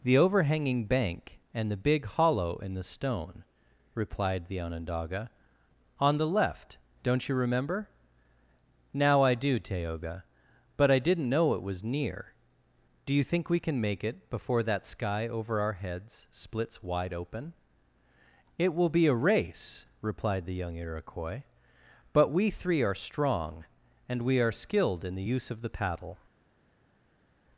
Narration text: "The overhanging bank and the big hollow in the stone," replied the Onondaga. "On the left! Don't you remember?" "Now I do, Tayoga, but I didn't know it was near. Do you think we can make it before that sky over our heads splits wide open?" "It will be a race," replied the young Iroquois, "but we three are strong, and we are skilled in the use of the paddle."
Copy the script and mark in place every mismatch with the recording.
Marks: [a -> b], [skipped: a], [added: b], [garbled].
"The overhanging bank and the big hollow in the stone," replied the Onondaga. "On the left! Don't you remember?" "Now I do, Tayoga, but I didn't know it was near. Do you think we can make it before that sky over our heads splits wide open?" "It will be a race," replied the young Iroquois, "but we three are strong, and we are skilled in the use of the paddle."